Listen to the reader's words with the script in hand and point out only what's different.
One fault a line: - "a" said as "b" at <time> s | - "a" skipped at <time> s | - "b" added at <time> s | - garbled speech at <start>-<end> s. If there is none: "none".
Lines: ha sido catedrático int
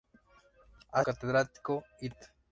- "sido" skipped at 1.1 s